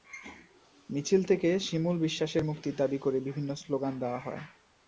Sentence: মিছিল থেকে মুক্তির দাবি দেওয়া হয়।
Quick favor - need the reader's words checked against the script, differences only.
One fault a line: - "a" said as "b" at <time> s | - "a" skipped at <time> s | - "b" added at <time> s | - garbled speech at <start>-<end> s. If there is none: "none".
- "শিমুল বিশ্বাসের" added at 1.6 s
- "করে বিভিন্ন স্লোগান" added at 3.0 s